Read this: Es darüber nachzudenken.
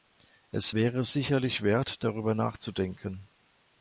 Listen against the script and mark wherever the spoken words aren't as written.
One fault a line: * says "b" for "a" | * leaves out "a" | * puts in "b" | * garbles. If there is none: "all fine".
* puts in "wäre sicherlich wert"